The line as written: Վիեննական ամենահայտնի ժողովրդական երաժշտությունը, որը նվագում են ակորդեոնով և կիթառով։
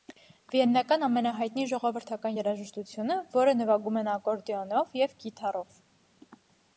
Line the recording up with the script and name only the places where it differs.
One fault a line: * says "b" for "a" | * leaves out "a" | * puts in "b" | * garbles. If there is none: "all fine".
all fine